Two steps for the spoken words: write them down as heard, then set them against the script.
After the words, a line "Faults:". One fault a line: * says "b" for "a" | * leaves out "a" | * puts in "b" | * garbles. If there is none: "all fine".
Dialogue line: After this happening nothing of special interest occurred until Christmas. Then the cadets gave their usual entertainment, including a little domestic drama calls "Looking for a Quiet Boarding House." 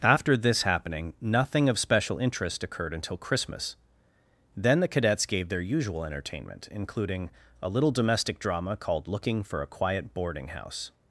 After this happening nothing of special interest occurred until Christmas. Then the cadets gave their usual entertainment, including a little domestic drama called "Looking for a Quiet Boarding House."
Faults:
* says "called" for "calls"